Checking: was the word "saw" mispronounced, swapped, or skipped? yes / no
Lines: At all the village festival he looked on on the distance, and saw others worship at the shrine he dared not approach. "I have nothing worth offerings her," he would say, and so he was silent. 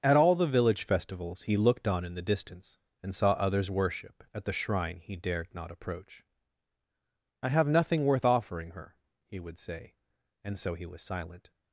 no